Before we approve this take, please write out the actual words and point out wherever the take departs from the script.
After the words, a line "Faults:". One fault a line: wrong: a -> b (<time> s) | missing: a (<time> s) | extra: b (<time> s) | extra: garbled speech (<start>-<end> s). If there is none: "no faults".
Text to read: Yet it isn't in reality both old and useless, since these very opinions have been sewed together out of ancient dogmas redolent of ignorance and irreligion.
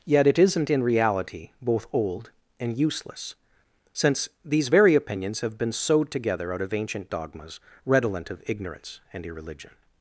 Yet it isn't in reality both old and useless, since these very opinions have been sewed together out of ancient dogmas redolent of ignorance and irreligion.
Faults:
no faults